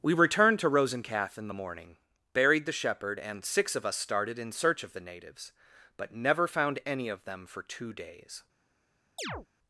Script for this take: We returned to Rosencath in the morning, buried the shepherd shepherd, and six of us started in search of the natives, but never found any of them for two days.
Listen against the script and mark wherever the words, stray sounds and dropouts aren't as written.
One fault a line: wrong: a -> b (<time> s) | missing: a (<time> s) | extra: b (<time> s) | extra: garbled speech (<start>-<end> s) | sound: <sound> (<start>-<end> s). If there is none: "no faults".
missing: shepherd (3.2 s)
sound: chirp (9.2-9.5 s)